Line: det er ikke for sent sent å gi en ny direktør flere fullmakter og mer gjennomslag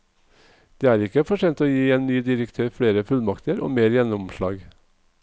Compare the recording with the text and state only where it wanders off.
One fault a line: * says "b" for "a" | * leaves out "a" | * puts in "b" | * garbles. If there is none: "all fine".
* leaves out "sent"